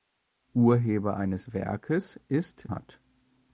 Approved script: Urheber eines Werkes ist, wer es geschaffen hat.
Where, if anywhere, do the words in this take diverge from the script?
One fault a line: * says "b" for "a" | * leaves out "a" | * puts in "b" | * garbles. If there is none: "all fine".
* leaves out "wer es geschaffen"